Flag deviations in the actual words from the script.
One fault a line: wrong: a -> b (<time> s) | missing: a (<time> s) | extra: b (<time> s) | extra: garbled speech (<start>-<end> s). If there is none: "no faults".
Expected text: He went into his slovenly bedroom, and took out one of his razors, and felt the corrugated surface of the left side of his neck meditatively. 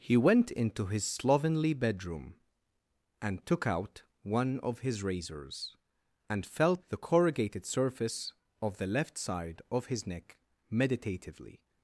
no faults